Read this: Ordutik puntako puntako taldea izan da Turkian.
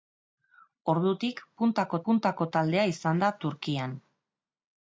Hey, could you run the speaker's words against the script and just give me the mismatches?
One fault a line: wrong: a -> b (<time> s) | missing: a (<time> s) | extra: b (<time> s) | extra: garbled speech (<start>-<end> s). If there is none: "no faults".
no faults